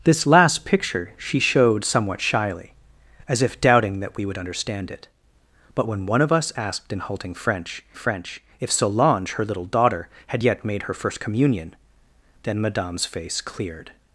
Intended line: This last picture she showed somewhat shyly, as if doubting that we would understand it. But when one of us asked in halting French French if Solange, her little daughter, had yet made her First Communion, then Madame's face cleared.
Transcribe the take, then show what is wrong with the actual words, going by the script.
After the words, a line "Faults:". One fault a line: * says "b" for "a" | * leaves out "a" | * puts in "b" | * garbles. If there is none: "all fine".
This last picture she showed somewhat shyly, as if doubting that we would understand it. But when one of us asked in halting French French if Solange, her little daughter, had yet made her First Communion, then Madame's face cleared.
Faults:
all fine